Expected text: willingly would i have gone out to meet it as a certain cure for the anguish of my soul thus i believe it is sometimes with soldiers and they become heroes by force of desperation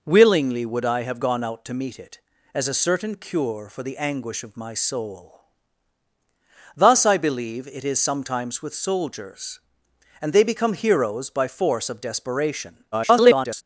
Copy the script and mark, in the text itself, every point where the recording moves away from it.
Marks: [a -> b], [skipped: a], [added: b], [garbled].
willingly would i have gone out to meet it as a certain cure for the anguish of my soul thus i believe it is sometimes with soldiers and they become heroes by force of desperation [garbled]